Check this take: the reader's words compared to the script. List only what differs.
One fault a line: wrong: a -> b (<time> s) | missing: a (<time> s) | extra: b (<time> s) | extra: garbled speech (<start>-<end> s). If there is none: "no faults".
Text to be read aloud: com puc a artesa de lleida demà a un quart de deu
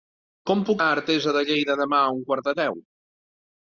no faults